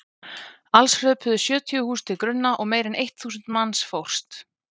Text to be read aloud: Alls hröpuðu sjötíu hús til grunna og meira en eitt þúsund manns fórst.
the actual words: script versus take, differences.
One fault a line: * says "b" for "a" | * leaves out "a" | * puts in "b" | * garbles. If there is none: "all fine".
all fine